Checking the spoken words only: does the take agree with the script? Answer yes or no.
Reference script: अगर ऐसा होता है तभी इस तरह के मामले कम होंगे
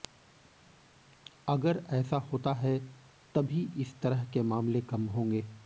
yes